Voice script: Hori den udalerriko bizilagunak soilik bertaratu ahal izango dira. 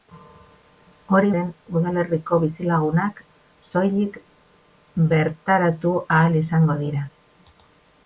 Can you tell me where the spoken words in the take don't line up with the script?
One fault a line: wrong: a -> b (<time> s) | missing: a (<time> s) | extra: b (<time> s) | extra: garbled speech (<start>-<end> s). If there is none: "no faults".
no faults